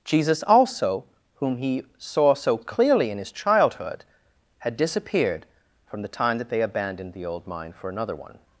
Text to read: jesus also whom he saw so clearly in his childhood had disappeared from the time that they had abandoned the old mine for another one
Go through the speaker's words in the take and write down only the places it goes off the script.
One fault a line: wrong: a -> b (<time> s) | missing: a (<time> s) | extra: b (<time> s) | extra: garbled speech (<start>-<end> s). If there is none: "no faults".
missing: had (6.6 s)